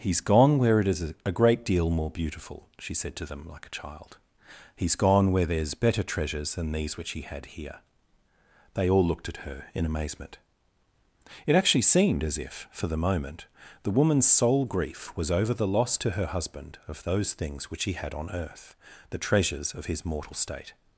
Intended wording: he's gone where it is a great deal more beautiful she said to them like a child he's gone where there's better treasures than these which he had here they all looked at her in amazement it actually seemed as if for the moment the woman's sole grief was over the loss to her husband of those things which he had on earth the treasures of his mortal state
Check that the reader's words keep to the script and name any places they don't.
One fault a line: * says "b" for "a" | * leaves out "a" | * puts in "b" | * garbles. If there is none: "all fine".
all fine